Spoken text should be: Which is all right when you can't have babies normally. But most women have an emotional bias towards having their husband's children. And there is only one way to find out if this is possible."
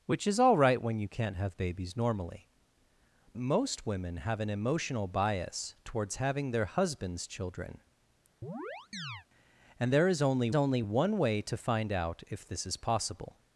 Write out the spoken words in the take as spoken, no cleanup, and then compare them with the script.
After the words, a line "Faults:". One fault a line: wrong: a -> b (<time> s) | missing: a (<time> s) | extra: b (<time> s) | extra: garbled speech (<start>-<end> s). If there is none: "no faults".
Which is all right when you can't have babies normally. Most women have an emotional bias towards having their husband's children. And there is only only one way to find out if this is possible."
Faults:
missing: But (2.5 s)
extra: only (10.5 s)